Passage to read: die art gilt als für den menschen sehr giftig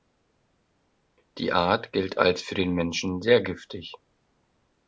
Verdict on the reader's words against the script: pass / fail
pass